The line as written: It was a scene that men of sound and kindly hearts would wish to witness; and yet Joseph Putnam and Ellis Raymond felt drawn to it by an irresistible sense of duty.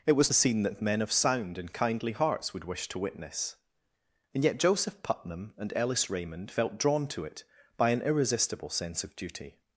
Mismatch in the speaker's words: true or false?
false